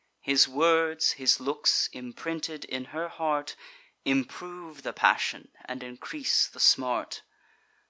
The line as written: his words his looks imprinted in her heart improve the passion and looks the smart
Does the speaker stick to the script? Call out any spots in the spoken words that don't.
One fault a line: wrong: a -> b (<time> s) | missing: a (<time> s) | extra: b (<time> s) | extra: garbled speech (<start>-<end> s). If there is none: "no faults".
wrong: looks -> increase (5.8 s)